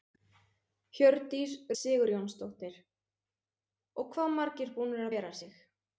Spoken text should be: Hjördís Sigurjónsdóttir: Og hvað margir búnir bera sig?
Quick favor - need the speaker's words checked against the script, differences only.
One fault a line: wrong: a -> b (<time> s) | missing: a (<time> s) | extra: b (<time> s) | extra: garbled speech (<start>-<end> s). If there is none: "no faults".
no faults